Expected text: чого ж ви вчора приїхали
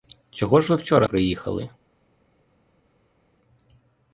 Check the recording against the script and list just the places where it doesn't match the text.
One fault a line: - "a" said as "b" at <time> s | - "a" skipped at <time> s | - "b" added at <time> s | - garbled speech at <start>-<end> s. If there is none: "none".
none